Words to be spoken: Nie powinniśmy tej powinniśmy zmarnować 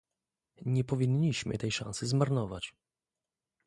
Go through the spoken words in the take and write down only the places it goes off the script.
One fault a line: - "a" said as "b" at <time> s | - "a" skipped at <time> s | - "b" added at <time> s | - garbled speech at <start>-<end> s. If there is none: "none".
- "powinniśmy" said as "szansy" at 1.7 s